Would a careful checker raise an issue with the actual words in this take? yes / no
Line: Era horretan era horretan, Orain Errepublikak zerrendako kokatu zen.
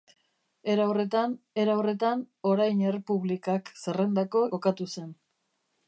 no